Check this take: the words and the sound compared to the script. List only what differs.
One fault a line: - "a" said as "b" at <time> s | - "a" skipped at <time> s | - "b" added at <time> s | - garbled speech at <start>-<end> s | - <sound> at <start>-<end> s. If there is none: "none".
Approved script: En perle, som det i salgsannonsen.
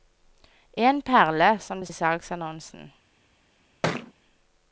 - thud at 3.8-4.1 s